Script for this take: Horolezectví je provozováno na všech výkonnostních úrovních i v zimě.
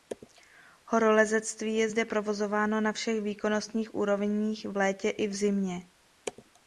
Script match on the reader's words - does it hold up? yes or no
no